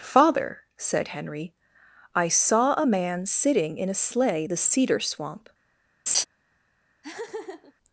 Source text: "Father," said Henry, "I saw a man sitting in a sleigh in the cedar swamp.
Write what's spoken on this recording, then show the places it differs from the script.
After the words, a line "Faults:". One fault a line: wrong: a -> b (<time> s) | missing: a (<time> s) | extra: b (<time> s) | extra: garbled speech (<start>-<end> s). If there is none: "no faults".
"Father," said Henry, "I saw a man sitting in a sleigh the cedar swamp.
Faults:
missing: in (4.5 s)